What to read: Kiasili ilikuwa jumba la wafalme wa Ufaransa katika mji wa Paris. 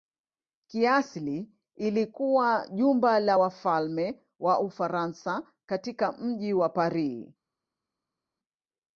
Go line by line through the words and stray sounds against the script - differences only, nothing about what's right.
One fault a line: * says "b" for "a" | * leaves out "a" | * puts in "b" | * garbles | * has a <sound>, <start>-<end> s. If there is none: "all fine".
all fine